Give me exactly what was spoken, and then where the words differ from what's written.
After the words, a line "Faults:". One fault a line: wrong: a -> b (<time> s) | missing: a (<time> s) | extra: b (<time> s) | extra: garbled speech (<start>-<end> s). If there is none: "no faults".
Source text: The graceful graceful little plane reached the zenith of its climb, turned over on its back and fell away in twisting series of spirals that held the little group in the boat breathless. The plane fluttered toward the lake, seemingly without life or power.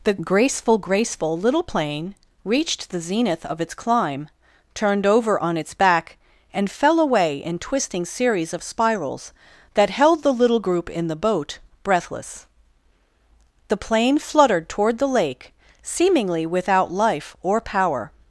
The graceful graceful little plane reached the zenith of its climb, turned over on its back and fell away in twisting series of spirals that held the little group in the boat breathless. The plane fluttered toward the lake, seemingly without life or power.
Faults:
no faults